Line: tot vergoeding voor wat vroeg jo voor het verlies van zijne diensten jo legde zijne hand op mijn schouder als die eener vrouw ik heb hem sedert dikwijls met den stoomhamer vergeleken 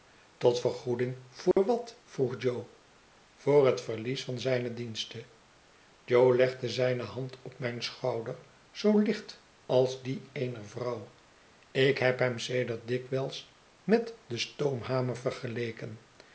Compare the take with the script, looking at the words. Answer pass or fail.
fail